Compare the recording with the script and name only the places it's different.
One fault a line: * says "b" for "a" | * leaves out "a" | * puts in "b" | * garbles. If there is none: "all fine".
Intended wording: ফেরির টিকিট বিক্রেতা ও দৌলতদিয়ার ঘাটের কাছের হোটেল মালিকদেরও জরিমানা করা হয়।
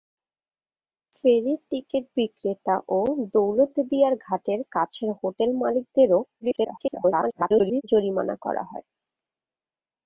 * garbles